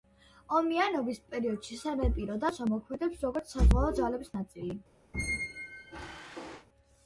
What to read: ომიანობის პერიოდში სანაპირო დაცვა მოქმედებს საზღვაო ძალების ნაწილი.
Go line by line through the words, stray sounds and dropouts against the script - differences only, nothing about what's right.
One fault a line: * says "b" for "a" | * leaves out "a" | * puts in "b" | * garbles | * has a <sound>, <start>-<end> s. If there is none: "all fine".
* puts in "როგორც"
* has a squeak, 5.1-6.7 s